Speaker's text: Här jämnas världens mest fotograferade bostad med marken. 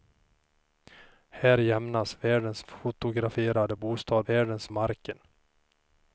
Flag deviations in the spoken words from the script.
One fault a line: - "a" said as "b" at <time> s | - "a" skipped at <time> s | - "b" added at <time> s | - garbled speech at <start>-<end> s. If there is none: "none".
- "mest" skipped at 2.7 s
- "med" said as "världens" at 4.3 s